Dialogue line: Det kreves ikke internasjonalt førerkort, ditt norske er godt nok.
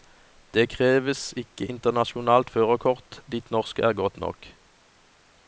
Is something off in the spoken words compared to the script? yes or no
no